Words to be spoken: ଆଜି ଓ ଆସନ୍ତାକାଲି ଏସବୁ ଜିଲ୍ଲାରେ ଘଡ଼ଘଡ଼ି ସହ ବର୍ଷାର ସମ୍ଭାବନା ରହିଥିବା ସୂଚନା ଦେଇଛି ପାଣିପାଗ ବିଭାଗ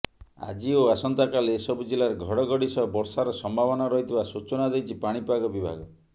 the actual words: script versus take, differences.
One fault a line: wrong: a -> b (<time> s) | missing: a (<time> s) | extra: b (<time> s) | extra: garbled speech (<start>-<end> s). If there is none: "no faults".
no faults